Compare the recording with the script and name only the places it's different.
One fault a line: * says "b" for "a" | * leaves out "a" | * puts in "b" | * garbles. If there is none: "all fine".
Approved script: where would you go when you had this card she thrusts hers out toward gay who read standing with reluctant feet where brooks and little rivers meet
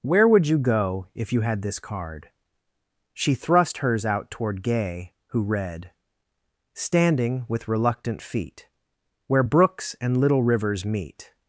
* says "if" for "when"
* says "thrust" for "thrusts"